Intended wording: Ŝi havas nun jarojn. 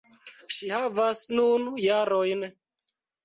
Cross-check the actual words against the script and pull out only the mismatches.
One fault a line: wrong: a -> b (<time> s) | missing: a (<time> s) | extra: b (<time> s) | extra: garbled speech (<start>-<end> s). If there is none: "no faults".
no faults